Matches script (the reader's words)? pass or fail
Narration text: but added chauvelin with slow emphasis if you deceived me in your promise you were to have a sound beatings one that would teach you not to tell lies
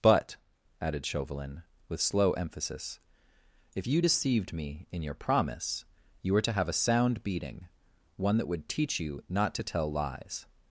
fail